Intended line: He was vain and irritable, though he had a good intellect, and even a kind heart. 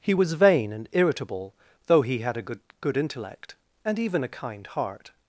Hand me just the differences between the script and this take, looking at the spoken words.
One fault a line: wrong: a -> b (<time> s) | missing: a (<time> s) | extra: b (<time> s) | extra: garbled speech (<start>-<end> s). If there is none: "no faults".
extra: good (2.8 s)